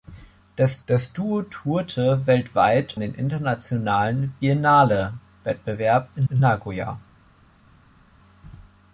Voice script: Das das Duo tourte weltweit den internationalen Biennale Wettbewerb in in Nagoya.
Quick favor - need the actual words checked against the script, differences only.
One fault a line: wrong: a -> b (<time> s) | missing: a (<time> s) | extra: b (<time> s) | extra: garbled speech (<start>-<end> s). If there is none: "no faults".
no faults